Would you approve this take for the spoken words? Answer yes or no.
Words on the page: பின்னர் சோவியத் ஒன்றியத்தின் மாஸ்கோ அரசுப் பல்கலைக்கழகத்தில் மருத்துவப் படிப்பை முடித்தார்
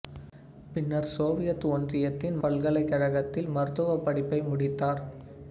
no